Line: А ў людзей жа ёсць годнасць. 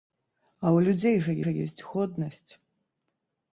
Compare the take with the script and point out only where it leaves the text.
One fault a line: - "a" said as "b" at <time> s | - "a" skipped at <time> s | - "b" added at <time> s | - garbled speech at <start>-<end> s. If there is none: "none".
- "жа" added at 1.4 s